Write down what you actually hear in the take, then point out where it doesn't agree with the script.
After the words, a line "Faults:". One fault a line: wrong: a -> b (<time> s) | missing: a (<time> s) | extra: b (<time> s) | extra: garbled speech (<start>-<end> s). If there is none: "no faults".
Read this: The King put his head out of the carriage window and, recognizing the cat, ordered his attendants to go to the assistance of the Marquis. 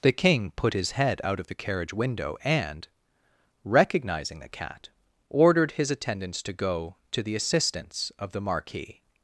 The King put his head out of the carriage window and, recognizing the cat, ordered his attendants to go to the assistance of the Marquis.
Faults:
no faults